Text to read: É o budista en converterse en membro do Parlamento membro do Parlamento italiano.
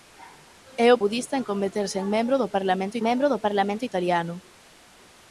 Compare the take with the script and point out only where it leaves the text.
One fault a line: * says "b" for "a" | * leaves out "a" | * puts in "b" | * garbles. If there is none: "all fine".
all fine